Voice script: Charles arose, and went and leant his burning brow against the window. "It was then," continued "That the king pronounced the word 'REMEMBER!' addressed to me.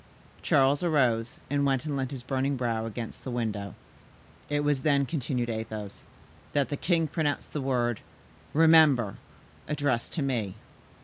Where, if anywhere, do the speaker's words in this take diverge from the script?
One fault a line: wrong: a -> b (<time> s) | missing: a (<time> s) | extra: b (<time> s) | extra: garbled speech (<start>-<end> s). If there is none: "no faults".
extra: Athos (5.5 s)